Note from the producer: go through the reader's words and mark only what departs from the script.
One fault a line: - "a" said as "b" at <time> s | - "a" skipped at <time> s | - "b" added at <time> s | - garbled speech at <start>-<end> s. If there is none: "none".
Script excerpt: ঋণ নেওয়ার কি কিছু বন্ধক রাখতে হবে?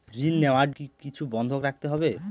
none